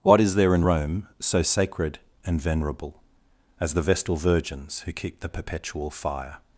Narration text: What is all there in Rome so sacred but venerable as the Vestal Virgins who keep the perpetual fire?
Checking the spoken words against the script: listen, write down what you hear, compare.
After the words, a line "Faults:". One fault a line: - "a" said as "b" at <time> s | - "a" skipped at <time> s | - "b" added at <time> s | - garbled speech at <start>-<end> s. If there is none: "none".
What is there in Rome so sacred and venerable as the Vestal Virgins who keep the perpetual fire?
Faults:
- "all" skipped at 0.3 s
- "but" said as "and" at 2.2 s